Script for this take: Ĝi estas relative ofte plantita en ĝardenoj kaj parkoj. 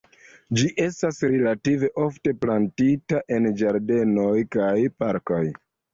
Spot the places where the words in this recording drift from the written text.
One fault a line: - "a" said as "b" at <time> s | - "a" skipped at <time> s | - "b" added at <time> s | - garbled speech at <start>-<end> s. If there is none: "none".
none